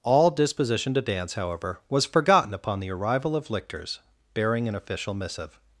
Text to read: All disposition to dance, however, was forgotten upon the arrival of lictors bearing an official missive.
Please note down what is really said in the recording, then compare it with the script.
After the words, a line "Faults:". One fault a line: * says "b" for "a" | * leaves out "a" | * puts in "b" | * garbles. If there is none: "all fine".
All disposition to dance, however, was forgotten upon the arrival of lictors bearing an official missive.
Faults:
all fine